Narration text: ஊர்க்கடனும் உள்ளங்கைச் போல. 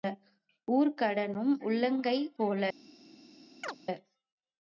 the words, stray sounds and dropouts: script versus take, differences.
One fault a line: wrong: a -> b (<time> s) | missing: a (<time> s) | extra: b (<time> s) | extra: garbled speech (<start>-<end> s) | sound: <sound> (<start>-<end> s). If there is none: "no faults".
sound: chirp (3.6-3.8 s)